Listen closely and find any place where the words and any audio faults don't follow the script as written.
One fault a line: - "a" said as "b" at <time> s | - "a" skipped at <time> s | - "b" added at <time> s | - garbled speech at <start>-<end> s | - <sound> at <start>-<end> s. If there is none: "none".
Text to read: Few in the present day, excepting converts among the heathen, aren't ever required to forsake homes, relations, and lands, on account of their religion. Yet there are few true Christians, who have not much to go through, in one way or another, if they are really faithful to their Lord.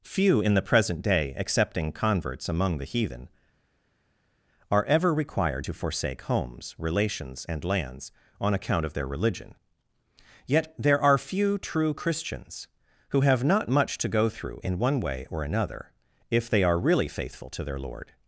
- "aren't" said as "are" at 4.7 s